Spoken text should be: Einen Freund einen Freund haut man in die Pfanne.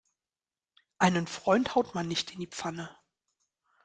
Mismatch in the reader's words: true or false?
true